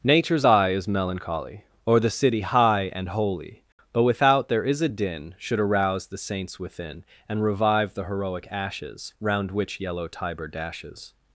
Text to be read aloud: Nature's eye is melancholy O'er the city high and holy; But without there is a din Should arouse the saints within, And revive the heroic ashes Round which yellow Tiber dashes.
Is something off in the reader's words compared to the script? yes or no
no